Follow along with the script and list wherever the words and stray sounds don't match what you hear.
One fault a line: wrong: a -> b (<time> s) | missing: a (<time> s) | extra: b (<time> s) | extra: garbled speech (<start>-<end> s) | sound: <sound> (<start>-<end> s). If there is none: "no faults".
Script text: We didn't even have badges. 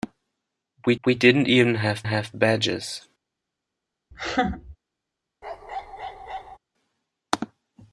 extra: we (1.0 s)
extra: have (2.0 s)
sound: laugh (4.1-4.8 s)
sound: bark (5.4-6.6 s)